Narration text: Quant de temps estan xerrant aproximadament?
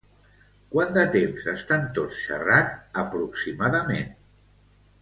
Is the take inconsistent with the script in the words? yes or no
yes